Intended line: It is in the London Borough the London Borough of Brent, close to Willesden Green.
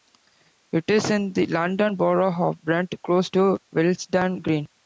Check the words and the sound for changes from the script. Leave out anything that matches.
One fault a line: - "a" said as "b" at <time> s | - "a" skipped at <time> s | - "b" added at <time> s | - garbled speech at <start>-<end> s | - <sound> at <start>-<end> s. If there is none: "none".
- "the London Borough" skipped at 2.3 s